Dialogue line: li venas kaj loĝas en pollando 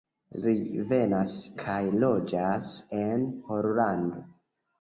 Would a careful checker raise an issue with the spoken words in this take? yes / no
no